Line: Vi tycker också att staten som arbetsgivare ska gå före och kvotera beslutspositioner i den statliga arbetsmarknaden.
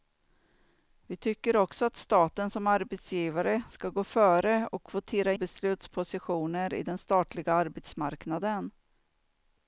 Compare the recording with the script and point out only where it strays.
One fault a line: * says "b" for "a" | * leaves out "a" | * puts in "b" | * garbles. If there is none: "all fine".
all fine